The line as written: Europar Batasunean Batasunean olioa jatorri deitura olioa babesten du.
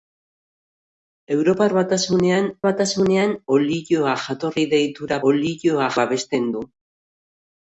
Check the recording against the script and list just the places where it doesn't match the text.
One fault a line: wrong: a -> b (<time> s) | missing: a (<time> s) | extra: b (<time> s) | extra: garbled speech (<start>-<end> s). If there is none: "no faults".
no faults